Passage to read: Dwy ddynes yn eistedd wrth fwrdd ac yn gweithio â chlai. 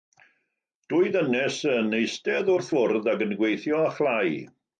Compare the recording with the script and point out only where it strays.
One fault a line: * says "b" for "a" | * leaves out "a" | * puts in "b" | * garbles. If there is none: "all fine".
all fine